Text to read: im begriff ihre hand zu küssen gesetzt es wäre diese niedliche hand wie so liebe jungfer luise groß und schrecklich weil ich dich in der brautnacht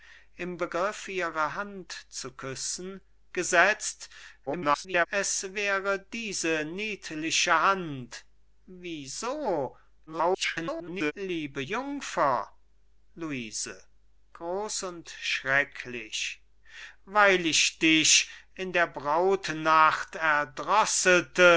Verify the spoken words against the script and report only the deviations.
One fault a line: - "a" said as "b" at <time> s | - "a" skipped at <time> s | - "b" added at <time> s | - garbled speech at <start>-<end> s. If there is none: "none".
- garbled speech at 4.5-5.1 s
- garbled speech at 10.1-11.1 s